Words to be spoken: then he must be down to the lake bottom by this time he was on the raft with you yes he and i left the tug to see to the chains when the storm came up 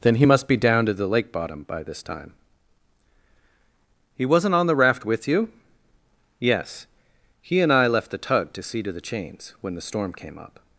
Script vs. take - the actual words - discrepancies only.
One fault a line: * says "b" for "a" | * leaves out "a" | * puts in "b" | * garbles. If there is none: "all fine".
* says "wasn't" for "was"